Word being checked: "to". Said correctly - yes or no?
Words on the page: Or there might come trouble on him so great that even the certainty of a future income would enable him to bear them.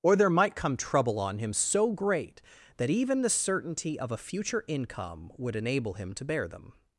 yes